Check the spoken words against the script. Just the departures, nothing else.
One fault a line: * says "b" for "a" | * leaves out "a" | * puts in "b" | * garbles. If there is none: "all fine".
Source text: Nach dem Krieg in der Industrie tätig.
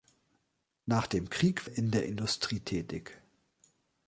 all fine